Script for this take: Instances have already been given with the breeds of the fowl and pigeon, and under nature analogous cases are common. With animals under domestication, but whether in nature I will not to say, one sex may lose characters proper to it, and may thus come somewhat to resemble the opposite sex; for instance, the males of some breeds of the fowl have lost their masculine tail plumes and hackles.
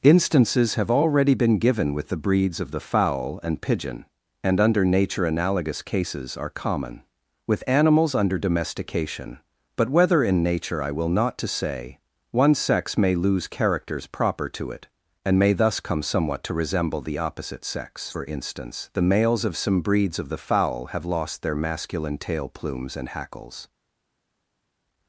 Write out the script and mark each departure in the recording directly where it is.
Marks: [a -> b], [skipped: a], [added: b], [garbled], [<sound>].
Instances have already been given with the breeds of the fowl and pigeon, and under nature analogous cases are common. With animals under domestication, but whether in nature I will not to say, one sex may lose characters proper to it, and may thus come somewhat to resemble the opposite sex; for instance, the males of some breeds of the fowl have lost their masculine tail plumes and hackles.